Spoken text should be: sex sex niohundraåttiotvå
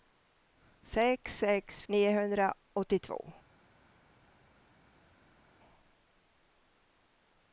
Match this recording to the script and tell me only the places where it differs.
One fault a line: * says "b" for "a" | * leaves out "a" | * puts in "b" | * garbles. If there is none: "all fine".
all fine